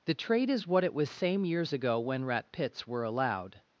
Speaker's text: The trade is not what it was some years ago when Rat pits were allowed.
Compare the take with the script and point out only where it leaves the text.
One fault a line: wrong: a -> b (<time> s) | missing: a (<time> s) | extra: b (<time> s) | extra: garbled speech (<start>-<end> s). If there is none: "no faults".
missing: not (0.7 s)
wrong: some -> same (1.1 s)